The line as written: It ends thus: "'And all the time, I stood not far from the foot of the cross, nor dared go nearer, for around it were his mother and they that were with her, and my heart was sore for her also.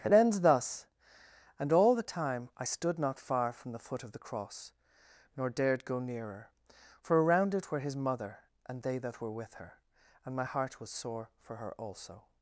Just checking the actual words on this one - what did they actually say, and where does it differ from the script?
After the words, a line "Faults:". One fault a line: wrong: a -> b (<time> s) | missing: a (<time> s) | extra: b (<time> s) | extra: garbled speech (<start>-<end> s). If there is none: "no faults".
It ends thus: "'And all the time, I stood not far from the foot of the cross, nor dared go nearer, for around it were his mother and they that were with her, and my heart was sore for her also.
Faults:
no faults